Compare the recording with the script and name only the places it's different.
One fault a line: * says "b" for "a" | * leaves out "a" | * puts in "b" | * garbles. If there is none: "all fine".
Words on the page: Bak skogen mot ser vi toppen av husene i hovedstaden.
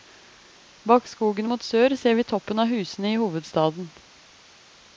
* puts in "sør"